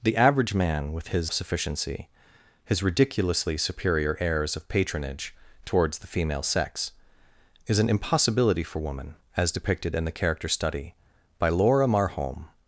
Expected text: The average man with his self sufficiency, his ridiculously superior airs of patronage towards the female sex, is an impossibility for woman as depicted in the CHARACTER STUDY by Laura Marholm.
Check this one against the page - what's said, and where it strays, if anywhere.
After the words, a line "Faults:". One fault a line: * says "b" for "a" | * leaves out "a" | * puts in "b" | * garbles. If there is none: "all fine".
The average man with his sufficiency, his ridiculously superior airs of patronage towards the female sex, is an impossibility for woman as depicted in the CHARACTER STUDY by Laura Marholm.
Faults:
* leaves out "self"